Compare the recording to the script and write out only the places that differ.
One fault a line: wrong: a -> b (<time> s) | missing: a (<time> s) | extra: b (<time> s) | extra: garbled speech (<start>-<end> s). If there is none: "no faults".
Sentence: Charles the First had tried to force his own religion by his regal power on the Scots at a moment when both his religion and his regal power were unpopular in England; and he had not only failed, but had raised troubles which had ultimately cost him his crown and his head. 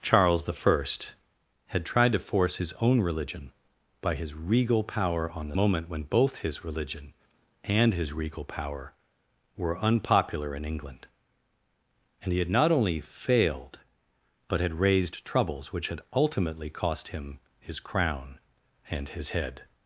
missing: Scots at a (5.5 s)